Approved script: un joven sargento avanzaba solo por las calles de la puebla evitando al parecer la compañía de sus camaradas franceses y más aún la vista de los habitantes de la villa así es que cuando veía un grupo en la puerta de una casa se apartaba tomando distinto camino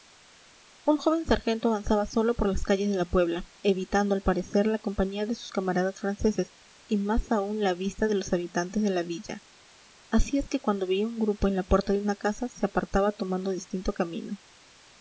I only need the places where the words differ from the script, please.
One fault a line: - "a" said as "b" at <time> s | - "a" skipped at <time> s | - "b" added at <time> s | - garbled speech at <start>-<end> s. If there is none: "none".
none